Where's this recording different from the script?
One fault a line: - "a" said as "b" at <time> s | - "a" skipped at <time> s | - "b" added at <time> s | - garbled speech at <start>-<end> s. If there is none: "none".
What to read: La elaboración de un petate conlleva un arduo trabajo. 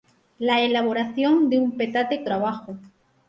- "conlleva un arduo" skipped at 2.2 s